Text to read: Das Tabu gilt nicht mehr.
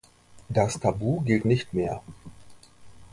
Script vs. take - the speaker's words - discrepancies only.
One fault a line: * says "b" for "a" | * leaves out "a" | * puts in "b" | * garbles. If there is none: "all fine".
all fine